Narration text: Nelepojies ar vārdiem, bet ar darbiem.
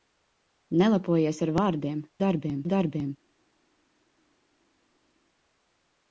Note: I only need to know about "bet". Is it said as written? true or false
false